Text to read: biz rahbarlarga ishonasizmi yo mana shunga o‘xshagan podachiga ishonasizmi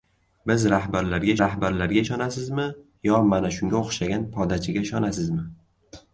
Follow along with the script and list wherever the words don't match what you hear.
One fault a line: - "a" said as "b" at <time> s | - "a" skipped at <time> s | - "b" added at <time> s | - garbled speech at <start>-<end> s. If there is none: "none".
- "rahbarlarga" added at 1.4 s